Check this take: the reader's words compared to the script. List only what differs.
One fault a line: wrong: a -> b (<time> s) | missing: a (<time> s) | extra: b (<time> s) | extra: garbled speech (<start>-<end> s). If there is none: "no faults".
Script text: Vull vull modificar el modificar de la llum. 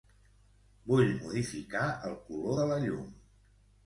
missing: vull (1.1 s)
wrong: modificar -> color (2.3 s)